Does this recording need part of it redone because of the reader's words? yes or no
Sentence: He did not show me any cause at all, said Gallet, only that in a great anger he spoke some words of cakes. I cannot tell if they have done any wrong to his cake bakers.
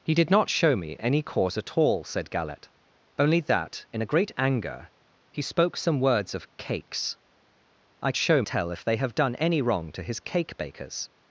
yes